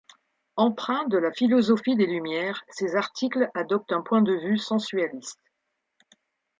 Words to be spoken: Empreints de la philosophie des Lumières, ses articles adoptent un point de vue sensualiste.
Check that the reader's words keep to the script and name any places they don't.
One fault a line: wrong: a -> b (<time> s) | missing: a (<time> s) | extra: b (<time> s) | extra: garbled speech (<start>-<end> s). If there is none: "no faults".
no faults